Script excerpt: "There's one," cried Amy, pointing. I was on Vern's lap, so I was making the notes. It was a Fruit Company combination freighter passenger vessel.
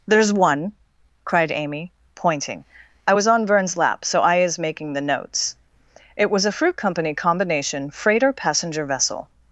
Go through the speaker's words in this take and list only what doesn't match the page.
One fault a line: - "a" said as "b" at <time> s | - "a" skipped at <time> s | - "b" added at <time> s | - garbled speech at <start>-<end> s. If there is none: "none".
- "was" said as "is" at 4.4 s